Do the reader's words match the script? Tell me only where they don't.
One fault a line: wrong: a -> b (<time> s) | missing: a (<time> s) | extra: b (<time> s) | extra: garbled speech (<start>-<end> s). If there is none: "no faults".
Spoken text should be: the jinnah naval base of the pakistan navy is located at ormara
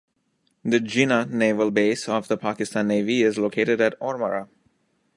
no faults